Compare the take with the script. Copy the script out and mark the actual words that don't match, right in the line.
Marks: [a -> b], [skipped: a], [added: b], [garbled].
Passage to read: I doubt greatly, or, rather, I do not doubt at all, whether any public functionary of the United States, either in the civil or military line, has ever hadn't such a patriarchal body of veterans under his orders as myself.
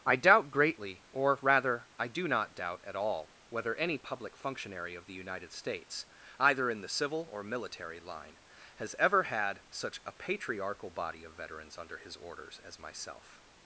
I doubt greatly, or, rather, I do not doubt at all, whether any public functionary of the United States, either in the civil or military line, has ever [hadn't -> had] such a patriarchal body of veterans under his orders as myself.